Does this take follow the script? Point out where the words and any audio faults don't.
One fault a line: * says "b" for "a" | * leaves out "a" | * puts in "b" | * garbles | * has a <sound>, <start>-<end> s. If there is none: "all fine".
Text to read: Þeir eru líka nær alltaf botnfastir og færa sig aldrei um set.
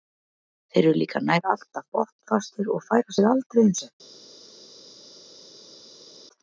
all fine